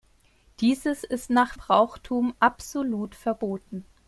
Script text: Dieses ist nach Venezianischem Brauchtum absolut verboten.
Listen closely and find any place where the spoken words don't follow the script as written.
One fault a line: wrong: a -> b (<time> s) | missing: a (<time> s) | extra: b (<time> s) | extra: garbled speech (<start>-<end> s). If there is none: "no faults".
missing: Venezianischem (1.6 s)